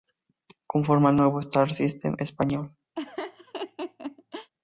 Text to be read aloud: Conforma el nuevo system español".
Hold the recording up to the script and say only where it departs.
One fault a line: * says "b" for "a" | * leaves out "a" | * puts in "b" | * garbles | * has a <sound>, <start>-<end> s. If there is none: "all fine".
* puts in "star"
* has a laugh, 3.0-4.5 s